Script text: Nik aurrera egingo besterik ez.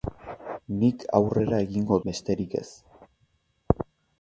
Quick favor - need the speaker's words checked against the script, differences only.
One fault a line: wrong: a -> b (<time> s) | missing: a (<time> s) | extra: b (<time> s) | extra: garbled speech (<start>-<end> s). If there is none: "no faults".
no faults